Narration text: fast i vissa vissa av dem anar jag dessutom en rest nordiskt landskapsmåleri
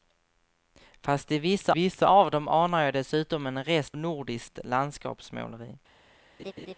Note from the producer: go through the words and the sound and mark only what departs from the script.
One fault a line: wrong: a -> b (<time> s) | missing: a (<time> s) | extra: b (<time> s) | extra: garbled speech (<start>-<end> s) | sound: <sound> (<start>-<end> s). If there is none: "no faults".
sound: laugh (6.4-6.7 s)